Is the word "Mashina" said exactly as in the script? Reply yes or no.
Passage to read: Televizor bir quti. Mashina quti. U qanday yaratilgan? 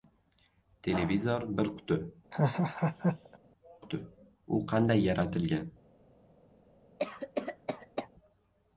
no